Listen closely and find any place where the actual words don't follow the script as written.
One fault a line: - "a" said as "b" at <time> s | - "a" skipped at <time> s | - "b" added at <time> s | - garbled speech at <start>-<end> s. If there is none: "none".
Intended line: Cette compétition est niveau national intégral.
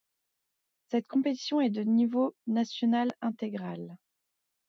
- "de" added at 1.7 s